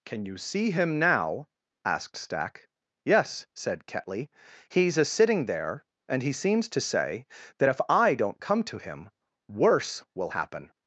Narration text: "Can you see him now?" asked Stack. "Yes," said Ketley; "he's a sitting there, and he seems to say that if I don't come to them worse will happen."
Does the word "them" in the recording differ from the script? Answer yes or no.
yes